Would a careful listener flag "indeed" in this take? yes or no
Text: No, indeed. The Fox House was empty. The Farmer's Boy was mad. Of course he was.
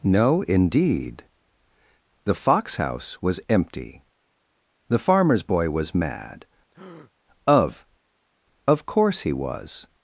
no